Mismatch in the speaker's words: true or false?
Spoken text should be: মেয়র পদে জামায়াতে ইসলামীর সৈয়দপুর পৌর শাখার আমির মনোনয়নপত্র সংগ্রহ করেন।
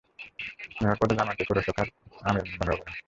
true